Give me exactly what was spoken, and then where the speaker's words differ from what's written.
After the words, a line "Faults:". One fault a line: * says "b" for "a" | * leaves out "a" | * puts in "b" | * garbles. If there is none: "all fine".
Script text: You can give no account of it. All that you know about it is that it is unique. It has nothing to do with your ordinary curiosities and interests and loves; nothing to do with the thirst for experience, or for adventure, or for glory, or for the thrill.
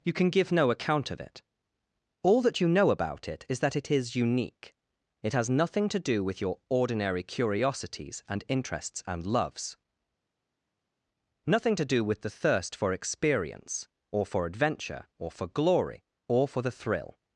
You can give no account of it. All that you know about it is that it is unique. It has nothing to do with your ordinary curiosities and interests and loves; nothing to do with the thirst for experience, or for adventure, or for glory, or for the thrill.
Faults:
all fine